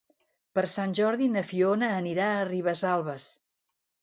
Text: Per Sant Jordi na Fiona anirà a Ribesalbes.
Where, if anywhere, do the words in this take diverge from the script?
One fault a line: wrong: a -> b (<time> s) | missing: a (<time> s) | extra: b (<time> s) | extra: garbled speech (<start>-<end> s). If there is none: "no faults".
no faults